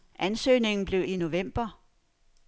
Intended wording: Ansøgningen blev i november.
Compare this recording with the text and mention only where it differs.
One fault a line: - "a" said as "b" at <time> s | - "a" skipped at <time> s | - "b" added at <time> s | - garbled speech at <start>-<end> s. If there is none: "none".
none